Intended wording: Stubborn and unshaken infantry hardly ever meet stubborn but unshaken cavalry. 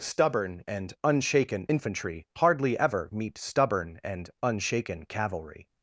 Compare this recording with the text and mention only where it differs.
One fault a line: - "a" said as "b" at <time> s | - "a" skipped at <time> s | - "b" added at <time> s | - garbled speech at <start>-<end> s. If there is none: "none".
- "but" said as "and" at 4.0 s